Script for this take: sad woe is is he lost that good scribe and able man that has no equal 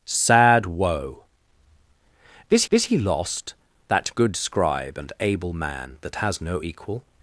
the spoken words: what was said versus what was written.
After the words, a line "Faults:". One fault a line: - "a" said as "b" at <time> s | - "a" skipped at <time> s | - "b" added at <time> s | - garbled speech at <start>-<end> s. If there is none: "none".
sad woe is is he lost that good scribe and able man that has no equal
Faults:
none